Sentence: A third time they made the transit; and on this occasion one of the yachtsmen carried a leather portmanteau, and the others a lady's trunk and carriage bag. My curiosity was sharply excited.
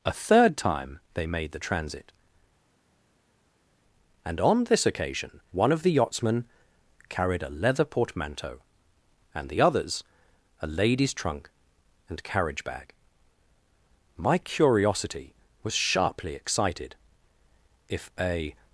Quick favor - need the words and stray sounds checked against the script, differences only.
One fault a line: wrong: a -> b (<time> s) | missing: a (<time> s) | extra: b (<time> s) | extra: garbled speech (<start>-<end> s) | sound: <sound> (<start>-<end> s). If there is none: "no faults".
extra: If a (17.9 s)